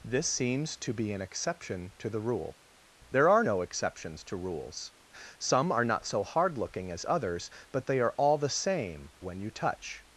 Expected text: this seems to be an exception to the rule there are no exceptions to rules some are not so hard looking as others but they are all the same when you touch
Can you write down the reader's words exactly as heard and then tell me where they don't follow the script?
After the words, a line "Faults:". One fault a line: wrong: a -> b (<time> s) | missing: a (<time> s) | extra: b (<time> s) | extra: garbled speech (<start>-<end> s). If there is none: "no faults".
this seems to be an exception to the rule there are no exceptions to rules some are not so hard looking as others but they are all the same when you touch
Faults:
no faults